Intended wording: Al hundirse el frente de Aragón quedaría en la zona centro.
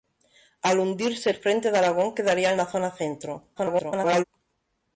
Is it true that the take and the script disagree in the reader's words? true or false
true